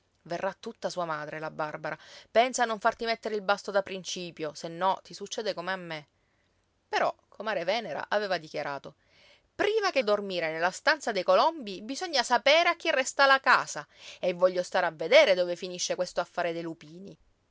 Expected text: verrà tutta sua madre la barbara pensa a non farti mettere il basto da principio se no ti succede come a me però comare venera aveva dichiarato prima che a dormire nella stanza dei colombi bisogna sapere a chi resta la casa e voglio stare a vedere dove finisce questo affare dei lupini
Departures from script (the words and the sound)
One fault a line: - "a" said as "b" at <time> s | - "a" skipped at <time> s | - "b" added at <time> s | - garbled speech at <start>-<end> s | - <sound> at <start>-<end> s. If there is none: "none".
none